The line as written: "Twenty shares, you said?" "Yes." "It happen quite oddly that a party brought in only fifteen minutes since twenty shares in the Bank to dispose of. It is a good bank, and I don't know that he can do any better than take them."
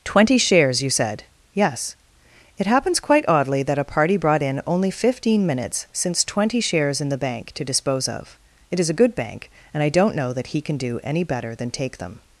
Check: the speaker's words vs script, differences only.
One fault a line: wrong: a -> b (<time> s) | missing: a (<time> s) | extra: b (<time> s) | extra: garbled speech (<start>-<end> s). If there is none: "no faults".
wrong: happen -> happens (2.7 s)